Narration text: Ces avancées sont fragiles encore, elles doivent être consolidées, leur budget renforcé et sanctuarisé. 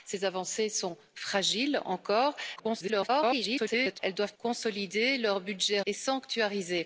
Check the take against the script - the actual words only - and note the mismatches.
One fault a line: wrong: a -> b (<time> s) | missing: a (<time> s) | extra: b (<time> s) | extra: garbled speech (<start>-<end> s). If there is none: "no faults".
extra: garbled speech (2.6-4.0 s)
missing: être (4.3 s)
missing: renforcé (5.8 s)